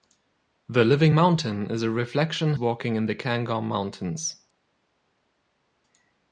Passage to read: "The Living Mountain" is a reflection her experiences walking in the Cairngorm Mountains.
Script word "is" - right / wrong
right